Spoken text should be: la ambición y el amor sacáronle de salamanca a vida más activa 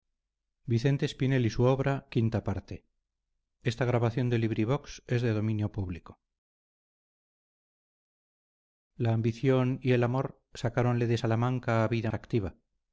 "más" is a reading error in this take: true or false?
true